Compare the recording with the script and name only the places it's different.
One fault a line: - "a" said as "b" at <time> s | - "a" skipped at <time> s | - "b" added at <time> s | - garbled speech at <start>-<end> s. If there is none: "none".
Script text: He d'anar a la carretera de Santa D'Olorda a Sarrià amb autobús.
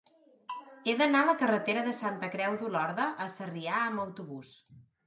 - "Creu" added at 2.4 s